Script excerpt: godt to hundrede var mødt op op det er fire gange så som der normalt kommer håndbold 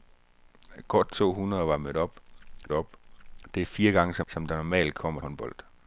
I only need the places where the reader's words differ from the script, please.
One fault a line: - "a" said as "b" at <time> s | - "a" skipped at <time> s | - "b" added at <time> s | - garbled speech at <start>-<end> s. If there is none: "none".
none